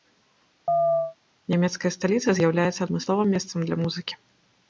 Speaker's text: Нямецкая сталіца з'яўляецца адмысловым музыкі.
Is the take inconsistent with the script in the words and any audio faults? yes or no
yes